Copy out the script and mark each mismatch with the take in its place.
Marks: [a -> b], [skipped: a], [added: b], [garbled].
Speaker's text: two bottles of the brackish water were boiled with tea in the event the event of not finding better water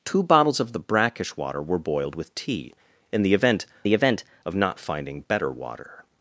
two bottles of the brackish water were boiled with tea in the event the event of not finding better water